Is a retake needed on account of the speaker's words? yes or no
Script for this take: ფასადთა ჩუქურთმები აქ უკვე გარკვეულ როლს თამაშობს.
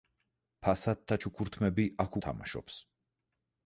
yes